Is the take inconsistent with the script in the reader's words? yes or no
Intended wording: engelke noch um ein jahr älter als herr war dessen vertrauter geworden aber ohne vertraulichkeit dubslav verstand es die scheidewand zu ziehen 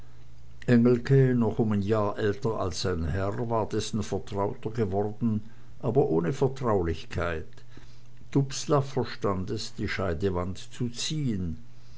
yes